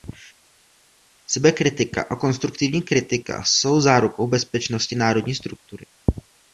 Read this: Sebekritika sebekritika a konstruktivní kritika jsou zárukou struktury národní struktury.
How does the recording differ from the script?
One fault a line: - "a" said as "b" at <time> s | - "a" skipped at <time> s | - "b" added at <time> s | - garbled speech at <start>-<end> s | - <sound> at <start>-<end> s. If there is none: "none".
- "sebekritika" skipped at 2.0 s
- "struktury" said as "bezpečnosti" at 4.3 s